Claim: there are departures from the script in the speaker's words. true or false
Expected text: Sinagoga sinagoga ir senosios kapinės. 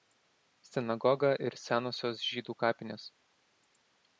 true